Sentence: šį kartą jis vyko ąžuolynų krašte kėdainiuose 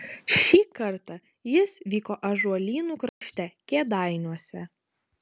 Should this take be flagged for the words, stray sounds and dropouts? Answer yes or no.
yes